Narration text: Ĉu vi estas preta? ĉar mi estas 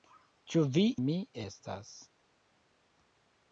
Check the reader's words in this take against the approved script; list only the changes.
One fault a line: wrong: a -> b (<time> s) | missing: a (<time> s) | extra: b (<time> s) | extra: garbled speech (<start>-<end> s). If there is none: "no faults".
missing: estas preta ĉar (0.8 s)